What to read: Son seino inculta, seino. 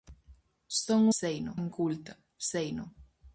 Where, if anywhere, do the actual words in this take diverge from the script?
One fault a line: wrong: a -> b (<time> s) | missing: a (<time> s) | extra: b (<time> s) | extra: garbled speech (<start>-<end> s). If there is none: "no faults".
no faults